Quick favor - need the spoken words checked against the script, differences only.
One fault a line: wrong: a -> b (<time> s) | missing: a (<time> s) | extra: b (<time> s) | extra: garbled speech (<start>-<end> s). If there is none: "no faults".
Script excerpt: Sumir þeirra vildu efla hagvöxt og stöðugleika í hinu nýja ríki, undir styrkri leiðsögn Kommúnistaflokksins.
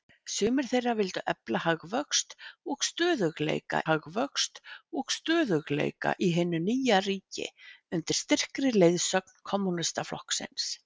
extra: hagvöxt og stöðugleika (3.9 s)